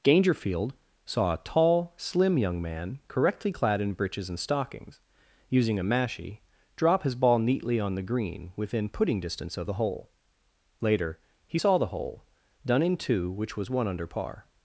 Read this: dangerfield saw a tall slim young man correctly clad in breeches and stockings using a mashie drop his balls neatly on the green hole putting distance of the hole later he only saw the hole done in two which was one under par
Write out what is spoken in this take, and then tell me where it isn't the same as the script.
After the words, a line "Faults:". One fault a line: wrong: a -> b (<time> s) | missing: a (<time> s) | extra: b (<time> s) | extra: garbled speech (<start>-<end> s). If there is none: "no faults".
dangerfield saw a tall slim young man correctly clad in breeches and stockings using a mashie drop his ball neatly on the green within putting distance of the hole later he saw the hole done in two which was one under par
Faults:
wrong: balls -> ball (7.2 s)
wrong: hole -> within (8.6 s)
missing: only (11.6 s)